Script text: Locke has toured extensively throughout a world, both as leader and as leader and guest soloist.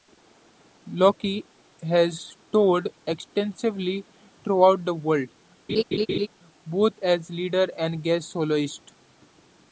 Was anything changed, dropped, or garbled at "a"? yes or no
yes